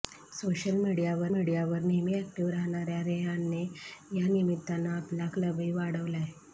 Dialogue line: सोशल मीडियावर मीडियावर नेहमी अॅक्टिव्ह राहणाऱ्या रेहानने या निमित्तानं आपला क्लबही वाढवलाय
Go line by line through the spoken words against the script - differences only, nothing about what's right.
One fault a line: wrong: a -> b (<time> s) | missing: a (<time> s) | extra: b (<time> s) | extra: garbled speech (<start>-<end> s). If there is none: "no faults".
no faults